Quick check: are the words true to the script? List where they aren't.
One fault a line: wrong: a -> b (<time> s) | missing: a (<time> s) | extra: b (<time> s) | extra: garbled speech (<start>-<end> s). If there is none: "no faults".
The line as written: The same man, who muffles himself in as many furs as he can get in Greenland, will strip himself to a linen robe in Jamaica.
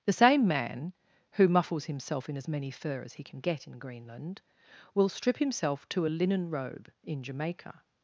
wrong: furs -> fur (2.7 s)